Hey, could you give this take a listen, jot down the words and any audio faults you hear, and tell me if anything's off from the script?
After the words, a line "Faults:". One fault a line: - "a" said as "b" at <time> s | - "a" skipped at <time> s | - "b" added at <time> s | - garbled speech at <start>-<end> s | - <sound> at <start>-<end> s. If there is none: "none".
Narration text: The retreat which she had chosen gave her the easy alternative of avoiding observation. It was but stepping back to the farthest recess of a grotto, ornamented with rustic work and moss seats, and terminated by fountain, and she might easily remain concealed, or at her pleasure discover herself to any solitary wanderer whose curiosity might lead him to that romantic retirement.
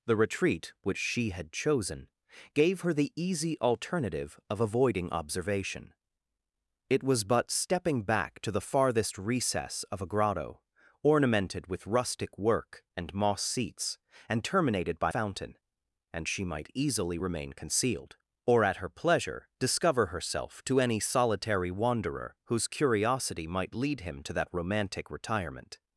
The retreat which she had chosen gave her the easy alternative of avoiding observation. It was but stepping back to the farthest recess of a grotto, ornamented with rustic work and moss seats, and terminated by fountain, and she might easily remain concealed, or at her pleasure discover herself to any solitary wanderer whose curiosity might lead him to that romantic retirement.
Faults:
none